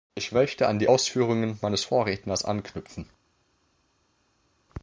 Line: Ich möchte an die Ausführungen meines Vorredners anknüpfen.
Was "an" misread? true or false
false